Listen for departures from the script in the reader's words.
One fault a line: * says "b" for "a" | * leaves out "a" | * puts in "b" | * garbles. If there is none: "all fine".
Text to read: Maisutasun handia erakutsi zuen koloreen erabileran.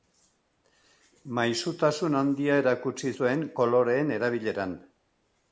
all fine